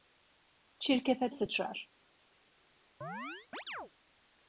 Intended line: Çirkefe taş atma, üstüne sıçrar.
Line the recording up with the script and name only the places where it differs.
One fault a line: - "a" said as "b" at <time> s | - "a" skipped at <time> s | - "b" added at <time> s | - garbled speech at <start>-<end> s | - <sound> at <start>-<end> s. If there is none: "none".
- "taş atma üstüne" skipped at 1.3 s
- chirp at 3.0-3.9 s